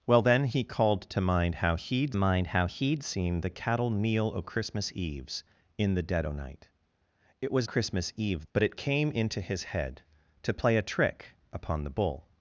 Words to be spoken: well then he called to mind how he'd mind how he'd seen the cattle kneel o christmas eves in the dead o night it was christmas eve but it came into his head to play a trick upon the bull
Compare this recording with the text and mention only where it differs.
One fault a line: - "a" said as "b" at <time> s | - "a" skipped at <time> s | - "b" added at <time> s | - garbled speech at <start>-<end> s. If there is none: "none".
none